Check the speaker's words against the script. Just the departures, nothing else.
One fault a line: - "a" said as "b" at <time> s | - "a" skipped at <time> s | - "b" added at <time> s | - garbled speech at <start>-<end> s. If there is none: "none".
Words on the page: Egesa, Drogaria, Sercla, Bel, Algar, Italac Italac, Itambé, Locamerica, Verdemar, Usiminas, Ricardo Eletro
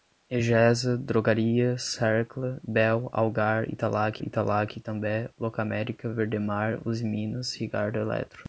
none